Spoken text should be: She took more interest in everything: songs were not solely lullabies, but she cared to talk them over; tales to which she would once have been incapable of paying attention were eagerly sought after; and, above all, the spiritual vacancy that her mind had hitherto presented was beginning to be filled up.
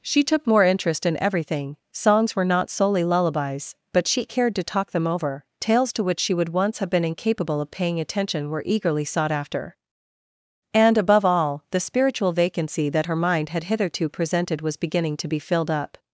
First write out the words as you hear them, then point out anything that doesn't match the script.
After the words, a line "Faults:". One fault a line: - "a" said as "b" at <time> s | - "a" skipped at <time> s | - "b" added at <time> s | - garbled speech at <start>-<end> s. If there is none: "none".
She took more interest in everything: songs were not solely lullabies, but she cared to talk them over; tales to which she would once have been incapable of paying attention were eagerly sought after; and, above all, the spiritual vacancy that her mind had hitherto presented was beginning to be filled up.
Faults:
none